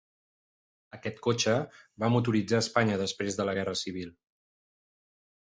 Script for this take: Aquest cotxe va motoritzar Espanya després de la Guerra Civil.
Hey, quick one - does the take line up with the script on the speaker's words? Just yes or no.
yes